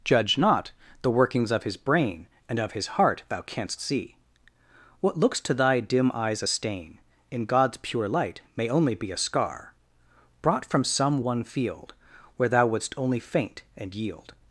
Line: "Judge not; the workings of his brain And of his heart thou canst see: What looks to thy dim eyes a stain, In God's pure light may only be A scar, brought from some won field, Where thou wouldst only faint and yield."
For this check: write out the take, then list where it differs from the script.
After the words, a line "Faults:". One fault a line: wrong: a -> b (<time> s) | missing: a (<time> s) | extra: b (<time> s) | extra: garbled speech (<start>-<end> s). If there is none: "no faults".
"Judge not; the workings of his brain And of his heart thou canst see: What looks to thy dim eyes a stain, In God's pure light may only be A scar, brought from some won field, Where thou wouldst only faint and yield."
Faults:
no faults